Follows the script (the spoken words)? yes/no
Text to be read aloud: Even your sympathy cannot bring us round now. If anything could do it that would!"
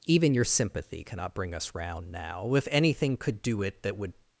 yes